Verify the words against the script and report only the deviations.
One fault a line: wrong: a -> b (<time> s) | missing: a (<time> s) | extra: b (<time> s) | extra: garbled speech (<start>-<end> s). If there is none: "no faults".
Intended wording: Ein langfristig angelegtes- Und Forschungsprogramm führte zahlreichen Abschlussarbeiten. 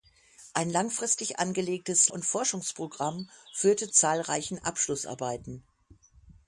no faults